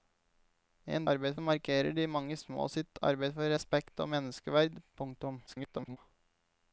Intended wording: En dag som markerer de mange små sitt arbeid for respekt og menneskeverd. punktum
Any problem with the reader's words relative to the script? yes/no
yes